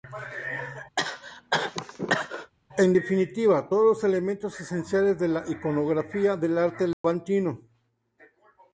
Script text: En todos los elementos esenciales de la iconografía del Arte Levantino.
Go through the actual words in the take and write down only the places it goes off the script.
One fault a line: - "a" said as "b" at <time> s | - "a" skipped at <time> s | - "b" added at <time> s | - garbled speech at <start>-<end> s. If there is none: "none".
- "definitiva" added at 2.9 s